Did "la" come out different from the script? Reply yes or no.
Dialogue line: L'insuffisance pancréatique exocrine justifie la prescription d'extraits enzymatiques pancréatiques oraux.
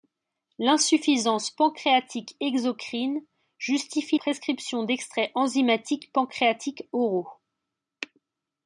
yes